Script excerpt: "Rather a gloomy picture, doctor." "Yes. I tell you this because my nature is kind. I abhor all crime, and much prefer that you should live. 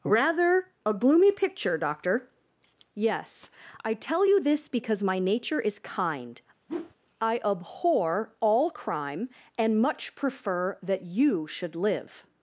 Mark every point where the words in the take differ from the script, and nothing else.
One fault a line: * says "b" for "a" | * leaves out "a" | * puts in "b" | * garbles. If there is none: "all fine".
all fine